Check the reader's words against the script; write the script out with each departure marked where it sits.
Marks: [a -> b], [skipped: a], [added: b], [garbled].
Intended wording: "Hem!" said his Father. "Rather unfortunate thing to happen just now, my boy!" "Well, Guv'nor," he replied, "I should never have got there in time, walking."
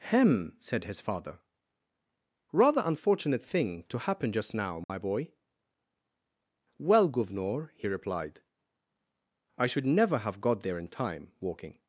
"Hem!" said his Father. "Rather unfortunate thing to happen just now, my boy!" "Well, Guv'nor," he replied, "I should never have got there in time, walking."